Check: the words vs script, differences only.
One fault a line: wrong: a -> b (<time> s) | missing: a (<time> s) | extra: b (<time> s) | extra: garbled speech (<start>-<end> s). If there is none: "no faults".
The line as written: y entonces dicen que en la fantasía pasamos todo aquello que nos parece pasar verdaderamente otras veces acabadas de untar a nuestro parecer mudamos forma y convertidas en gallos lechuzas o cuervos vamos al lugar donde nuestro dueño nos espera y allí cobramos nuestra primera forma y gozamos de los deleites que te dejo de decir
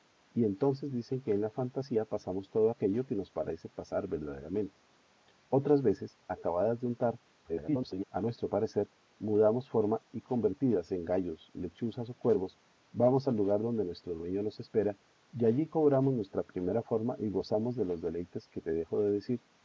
extra: garbled speech (7.4-8.0 s)